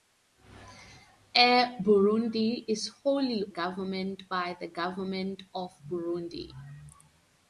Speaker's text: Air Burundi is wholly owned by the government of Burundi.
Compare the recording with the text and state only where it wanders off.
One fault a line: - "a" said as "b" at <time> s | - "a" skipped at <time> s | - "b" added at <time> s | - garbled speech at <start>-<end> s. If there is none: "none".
- "owned" said as "government" at 3.5 s